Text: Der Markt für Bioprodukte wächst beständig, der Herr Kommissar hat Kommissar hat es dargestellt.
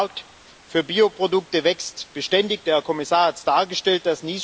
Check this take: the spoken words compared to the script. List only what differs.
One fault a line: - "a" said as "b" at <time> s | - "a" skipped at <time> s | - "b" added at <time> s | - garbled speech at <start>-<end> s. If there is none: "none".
- "Kommissar hat" skipped at 3.4 s